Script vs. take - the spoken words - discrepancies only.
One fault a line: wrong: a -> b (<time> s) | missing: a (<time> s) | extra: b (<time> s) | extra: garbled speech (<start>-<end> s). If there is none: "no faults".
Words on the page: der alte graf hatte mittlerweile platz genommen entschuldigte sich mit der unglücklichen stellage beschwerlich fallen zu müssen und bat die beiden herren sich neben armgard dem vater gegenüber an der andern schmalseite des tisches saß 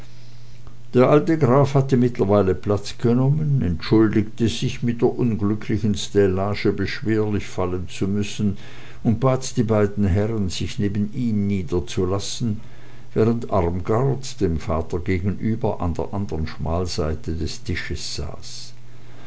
extra: ihm niederzulassen während (11.1 s)